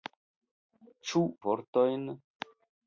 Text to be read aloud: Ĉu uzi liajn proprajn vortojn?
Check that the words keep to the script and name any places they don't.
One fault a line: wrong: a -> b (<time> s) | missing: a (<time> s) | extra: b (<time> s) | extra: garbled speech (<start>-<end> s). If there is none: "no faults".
missing: uzi liajn proprajn (1.2 s)